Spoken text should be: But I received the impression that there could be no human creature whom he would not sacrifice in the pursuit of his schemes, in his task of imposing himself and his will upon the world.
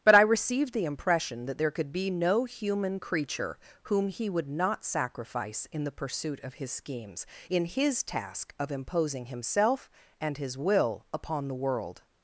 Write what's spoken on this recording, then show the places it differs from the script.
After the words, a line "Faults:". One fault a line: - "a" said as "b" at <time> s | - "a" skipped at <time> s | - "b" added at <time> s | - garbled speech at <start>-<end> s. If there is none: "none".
But I received the impression that there could be no human creature whom he would not sacrifice in the pursuit of his schemes, in his task of imposing himself and his will upon the world.
Faults:
none